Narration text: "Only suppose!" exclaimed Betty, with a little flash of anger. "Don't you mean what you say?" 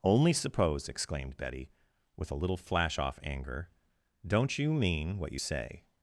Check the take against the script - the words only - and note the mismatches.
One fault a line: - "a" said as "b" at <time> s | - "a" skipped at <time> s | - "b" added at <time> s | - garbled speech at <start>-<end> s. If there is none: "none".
- "of" said as "off" at 3.0 s